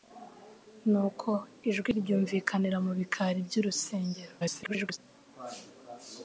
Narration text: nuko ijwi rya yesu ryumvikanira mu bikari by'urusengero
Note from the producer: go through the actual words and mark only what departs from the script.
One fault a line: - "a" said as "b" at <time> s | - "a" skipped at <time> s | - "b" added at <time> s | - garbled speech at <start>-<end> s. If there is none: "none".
- "rya yesu" skipped at 1.9 s
- garbled speech at 4.4-5.0 s